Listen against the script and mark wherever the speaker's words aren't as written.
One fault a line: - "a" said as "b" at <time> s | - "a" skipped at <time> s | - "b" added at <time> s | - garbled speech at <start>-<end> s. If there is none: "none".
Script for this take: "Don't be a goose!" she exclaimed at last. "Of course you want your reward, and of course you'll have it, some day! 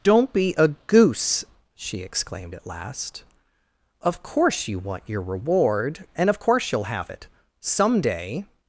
none